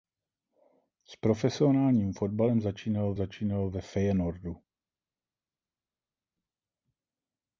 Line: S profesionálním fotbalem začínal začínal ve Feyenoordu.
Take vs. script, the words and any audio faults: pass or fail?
pass